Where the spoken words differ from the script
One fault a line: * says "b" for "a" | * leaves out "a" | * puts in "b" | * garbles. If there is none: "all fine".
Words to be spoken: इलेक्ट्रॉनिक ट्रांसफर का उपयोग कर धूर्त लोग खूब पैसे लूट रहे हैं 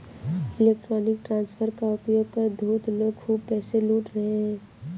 all fine